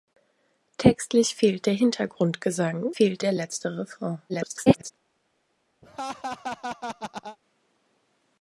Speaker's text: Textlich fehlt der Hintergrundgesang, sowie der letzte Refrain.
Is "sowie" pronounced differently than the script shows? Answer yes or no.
yes